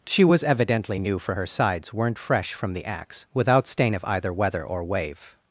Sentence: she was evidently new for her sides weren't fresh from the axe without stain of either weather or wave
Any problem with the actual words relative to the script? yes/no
no